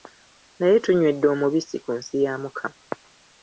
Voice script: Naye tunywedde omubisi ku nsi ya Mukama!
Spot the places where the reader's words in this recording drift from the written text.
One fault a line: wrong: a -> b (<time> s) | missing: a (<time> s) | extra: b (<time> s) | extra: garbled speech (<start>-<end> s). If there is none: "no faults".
no faults